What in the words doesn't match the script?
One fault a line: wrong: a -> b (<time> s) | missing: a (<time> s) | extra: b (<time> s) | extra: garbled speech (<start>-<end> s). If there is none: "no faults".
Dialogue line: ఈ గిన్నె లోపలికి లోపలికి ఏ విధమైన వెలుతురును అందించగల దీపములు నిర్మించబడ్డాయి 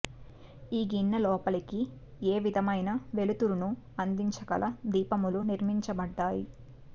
missing: లోపలికి (1.8 s)